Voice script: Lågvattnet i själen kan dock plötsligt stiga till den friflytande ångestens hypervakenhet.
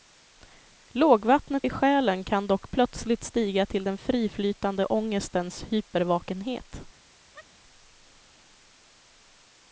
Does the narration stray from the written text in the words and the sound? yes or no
yes